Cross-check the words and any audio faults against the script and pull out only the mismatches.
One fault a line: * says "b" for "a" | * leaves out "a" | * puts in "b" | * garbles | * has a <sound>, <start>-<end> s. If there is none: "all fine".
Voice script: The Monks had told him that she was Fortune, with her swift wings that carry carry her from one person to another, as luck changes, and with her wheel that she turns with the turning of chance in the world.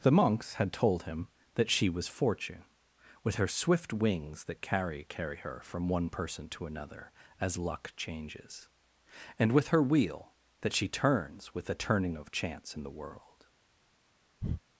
* has a breath, 14.4-14.6 s